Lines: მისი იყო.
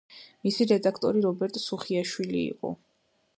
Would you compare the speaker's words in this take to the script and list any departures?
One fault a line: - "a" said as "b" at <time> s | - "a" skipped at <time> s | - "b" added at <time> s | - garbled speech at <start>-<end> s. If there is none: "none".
- "რედაქტორი რობერტ სუხიაშვილი" added at 0.7 s